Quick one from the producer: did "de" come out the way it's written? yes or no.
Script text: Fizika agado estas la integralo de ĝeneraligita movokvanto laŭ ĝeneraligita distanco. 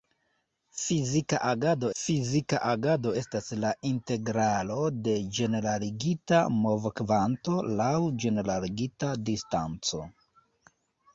yes